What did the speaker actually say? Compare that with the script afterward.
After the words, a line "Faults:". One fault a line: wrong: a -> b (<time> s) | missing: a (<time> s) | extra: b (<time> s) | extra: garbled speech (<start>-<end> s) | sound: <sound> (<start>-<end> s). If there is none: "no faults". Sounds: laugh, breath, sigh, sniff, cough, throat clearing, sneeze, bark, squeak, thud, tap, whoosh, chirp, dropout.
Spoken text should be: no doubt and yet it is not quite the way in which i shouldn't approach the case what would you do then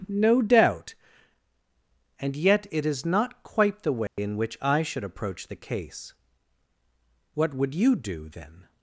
no doubt and yet it is not quite the way in which i should approach the case what would you do then
Faults:
sound: dropout (4.1-4.2 s)
wrong: shouldn't -> should (4.8 s)